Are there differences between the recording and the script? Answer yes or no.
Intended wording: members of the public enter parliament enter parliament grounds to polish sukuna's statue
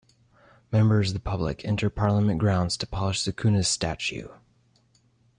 yes